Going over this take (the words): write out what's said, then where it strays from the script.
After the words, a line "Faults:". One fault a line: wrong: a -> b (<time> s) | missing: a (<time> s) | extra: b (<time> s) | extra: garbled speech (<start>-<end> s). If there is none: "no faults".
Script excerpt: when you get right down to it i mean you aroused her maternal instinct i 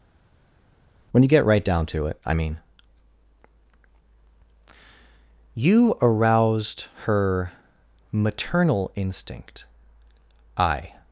when you get right down to it i mean you aroused her maternal instinct i
Faults:
no faults